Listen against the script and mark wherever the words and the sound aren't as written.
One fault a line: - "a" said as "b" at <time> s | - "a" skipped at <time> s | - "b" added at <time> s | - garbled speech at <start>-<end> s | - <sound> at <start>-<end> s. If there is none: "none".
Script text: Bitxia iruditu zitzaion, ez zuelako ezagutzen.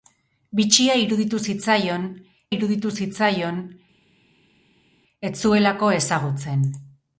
- "iruditu zitzaion" added at 2.5 s